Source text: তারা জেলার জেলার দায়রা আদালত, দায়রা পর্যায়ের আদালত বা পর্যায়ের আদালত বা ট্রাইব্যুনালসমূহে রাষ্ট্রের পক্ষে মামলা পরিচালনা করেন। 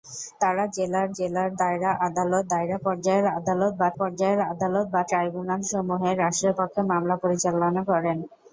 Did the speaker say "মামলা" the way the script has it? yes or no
yes